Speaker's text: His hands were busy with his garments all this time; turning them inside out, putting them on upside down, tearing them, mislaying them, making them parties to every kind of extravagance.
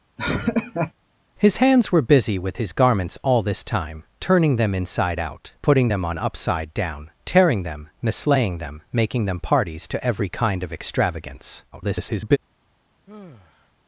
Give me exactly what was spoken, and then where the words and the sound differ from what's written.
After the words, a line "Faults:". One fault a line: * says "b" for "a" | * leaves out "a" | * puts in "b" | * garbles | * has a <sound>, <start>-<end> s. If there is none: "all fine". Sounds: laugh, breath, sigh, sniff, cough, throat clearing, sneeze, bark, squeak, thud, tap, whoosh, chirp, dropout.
His hands were busy with his garments all this time; turning them inside out, putting them on upside down, tearing them, mislaying them, making them parties to every kind of extravagance. [garbled]
Faults:
* has a laugh, 0.2-0.9 s
* garbles
* has a sigh, 13.1-13.7 s